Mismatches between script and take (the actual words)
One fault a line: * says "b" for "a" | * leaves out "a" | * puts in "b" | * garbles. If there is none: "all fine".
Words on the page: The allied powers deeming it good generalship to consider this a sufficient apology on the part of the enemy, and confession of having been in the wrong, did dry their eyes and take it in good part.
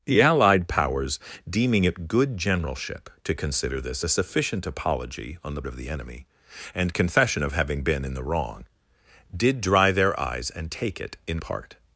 * leaves out "part"
* leaves out "good"